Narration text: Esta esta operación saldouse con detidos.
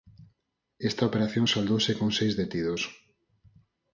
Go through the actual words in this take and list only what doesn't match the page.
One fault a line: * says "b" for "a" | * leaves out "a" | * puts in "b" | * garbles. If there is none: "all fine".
* leaves out "esta"
* puts in "seis"